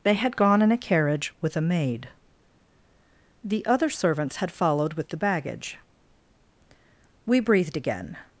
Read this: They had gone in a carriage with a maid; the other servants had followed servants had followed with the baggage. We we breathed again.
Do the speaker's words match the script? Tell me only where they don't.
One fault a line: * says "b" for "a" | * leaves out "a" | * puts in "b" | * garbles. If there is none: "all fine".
* leaves out "servants had followed"
* leaves out "we"